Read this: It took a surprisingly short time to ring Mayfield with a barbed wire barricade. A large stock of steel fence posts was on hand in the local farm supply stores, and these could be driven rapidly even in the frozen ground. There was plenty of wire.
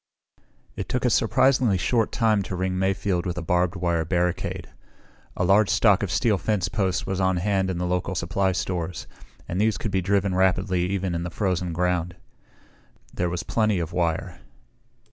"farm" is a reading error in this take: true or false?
true